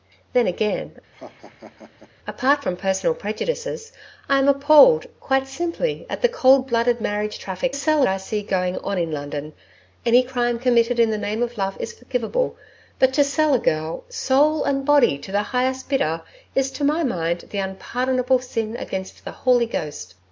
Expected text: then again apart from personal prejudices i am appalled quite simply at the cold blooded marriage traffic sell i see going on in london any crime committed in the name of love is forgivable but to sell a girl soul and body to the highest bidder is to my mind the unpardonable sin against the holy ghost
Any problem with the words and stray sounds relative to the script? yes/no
yes